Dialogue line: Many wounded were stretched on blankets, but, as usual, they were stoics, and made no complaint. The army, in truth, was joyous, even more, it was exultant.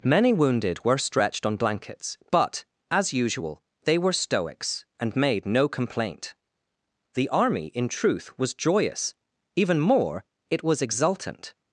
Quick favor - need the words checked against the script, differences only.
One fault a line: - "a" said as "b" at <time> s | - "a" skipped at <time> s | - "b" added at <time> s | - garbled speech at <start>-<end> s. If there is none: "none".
none